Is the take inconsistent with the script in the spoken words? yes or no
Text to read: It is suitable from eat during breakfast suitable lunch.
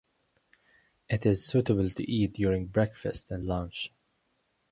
yes